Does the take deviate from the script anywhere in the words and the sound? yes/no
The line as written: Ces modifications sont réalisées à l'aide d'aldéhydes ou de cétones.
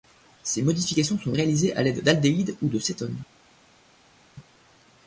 no